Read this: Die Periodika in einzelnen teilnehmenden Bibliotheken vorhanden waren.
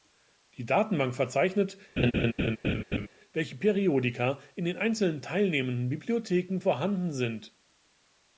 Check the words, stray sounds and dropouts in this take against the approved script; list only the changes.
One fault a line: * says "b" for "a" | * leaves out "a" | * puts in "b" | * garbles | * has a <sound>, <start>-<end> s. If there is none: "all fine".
* puts in "Datenbank verzeichnet welche"
* has a laugh, 2.0-3.1 s
* puts in "den"
* says "sind" for "waren"